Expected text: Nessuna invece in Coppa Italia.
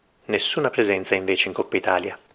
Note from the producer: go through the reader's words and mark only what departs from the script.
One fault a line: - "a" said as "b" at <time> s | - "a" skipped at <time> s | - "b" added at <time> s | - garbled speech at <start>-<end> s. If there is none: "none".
- "presenza" added at 0.7 s